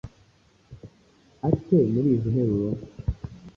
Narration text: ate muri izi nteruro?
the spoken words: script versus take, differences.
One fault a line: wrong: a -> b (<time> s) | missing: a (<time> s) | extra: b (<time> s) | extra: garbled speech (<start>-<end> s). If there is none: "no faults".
no faults